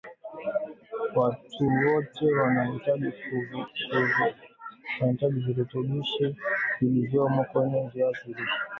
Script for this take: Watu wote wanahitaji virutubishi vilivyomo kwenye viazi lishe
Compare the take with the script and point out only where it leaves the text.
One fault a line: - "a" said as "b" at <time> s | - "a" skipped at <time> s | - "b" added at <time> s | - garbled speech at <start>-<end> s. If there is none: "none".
none